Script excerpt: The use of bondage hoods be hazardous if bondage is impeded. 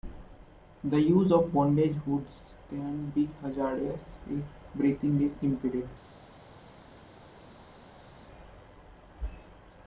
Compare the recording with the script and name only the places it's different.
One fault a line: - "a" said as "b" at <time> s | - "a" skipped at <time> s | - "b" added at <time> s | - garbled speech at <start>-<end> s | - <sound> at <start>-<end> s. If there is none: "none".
- "can" added at 2.7 s
- "bondage" said as "breathing" at 4.7 s